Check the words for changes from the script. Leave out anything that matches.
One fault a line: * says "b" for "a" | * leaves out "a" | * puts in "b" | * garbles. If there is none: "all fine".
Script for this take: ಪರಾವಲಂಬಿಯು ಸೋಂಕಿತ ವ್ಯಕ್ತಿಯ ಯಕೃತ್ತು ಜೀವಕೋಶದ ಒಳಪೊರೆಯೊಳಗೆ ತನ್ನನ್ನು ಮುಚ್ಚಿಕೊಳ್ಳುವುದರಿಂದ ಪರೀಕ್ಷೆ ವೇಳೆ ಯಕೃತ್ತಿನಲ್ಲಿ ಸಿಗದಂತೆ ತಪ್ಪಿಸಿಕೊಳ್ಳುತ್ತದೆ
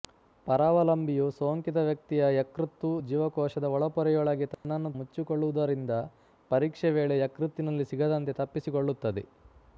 all fine